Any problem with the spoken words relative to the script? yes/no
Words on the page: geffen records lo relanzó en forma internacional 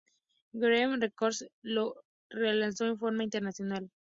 no